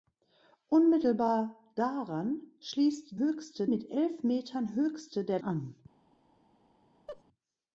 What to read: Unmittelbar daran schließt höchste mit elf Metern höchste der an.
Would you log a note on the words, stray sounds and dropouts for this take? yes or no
yes